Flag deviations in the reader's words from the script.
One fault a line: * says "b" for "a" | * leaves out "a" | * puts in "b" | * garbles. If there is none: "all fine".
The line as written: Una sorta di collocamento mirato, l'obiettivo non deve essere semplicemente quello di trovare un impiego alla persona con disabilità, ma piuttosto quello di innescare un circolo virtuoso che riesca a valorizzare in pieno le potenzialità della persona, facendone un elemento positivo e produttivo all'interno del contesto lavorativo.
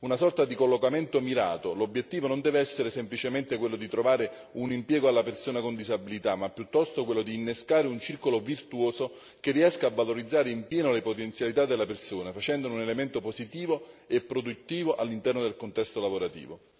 all fine